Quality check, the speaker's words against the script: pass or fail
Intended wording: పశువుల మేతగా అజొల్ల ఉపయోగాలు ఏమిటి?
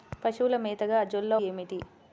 fail